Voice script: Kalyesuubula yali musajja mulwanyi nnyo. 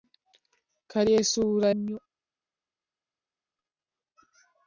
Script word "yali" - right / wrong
wrong